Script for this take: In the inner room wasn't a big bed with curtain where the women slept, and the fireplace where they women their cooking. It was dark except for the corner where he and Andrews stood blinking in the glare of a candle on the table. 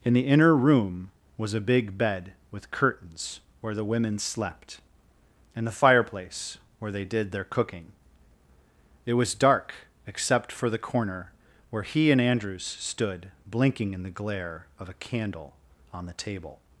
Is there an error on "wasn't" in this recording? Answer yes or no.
yes